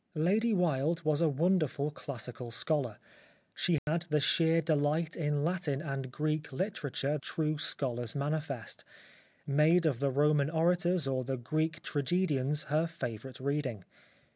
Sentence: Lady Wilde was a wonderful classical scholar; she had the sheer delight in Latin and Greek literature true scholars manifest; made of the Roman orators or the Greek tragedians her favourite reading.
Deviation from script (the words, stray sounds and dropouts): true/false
true